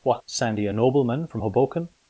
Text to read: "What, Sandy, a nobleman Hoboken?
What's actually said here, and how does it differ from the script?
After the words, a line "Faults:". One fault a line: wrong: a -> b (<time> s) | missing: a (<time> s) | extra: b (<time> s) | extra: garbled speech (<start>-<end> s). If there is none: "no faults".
"What, Sandy, a nobleman from Hoboken?
Faults:
extra: from (1.3 s)